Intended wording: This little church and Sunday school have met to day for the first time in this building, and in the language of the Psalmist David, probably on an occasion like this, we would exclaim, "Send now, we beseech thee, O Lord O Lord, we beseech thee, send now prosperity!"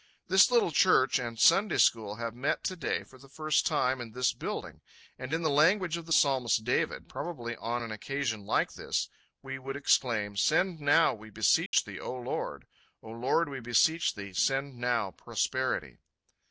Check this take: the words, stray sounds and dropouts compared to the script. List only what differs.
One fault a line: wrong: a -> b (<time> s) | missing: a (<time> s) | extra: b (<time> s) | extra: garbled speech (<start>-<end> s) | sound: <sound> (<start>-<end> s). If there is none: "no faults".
sound: dropout (11.7-11.7 s)